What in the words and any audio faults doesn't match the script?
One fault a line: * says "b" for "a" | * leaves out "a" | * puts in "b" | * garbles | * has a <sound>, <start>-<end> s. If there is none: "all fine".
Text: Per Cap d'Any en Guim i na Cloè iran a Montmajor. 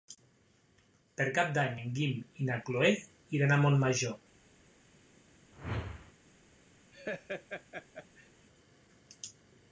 * has a whoosh, 5.5-6.1 s
* has a laugh, 6.9-8.3 s